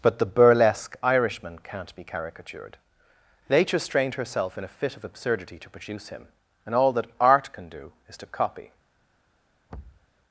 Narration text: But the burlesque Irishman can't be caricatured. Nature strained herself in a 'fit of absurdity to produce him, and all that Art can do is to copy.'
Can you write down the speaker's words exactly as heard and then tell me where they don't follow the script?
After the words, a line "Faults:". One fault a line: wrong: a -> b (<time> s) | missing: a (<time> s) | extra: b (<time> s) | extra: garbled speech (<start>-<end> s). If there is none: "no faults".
But the burlesque Irishman can't be caricatured. Nature strained herself in a 'fit of absurdity to produce him, and all that Art can do is to copy.'
Faults:
no faults